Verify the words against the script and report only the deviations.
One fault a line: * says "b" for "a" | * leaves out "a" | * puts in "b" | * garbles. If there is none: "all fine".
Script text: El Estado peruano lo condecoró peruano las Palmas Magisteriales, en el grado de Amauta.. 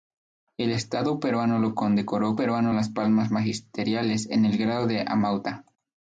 all fine